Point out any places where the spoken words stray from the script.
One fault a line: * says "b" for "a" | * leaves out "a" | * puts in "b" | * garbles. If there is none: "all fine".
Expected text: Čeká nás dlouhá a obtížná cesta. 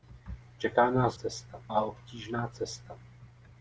* says "cesta" for "dlouhá"